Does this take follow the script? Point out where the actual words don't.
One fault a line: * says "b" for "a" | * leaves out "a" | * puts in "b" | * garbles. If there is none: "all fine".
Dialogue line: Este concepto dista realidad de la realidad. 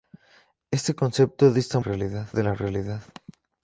all fine